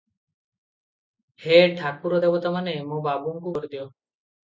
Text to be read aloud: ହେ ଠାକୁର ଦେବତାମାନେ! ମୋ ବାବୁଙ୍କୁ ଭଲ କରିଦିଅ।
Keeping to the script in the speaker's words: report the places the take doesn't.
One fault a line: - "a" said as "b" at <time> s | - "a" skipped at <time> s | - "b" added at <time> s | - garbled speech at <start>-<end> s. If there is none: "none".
- "ଭଲ" skipped at 3.5 s